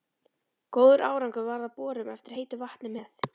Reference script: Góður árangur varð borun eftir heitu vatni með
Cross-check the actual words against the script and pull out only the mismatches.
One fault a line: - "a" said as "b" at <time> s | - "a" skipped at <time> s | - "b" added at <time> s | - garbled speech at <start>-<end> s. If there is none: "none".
- "af" added at 1.7 s